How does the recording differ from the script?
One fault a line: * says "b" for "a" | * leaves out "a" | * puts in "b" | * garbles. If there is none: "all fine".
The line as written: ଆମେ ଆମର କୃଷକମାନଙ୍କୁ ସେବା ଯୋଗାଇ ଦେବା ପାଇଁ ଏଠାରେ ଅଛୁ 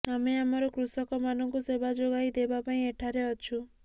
all fine